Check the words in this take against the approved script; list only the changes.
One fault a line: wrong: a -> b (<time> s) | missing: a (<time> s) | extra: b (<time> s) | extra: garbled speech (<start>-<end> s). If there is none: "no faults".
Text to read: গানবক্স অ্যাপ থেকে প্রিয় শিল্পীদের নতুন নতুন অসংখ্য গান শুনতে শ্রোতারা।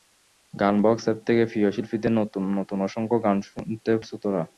no faults